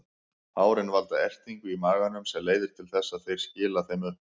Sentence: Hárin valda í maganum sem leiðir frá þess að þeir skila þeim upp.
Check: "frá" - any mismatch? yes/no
yes